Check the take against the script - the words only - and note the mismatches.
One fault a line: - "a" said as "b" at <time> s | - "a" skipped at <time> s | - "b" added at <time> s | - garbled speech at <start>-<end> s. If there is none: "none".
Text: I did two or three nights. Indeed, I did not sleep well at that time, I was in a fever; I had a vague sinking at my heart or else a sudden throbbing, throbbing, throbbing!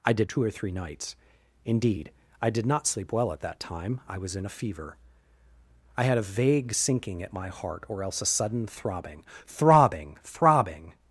none